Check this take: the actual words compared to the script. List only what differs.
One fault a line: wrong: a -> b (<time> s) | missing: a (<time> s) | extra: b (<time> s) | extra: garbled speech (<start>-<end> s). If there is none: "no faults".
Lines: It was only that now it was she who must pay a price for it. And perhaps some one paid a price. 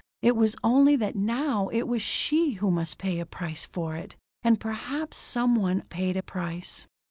no faults